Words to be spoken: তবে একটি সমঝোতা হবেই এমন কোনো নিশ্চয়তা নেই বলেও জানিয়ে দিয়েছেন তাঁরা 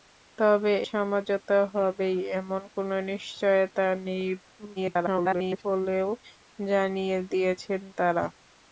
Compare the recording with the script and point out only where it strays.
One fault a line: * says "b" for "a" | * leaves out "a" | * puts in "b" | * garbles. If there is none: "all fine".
* leaves out "একটি"
* garbles